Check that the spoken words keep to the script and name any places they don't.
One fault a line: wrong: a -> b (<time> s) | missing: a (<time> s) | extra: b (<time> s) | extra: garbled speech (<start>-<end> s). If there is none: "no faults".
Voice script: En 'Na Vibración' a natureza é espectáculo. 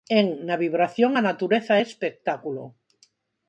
no faults